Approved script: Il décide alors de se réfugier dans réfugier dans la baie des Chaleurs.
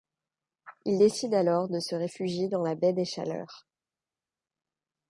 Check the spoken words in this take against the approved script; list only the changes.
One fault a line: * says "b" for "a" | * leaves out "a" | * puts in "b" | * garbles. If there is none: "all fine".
* leaves out "réfugier dans"